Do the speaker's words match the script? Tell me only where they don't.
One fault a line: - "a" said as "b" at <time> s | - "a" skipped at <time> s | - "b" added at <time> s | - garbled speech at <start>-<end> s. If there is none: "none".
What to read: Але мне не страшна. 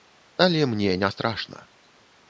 none